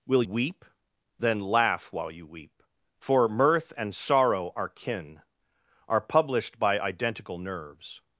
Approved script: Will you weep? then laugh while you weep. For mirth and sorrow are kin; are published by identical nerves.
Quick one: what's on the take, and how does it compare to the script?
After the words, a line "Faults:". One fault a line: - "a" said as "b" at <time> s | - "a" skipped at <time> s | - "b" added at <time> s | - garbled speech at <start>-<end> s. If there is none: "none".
Will weep? then laugh while you weep. For mirth and sorrow are kin; are published by identical nerves.
Faults:
- "you" skipped at 0.2 s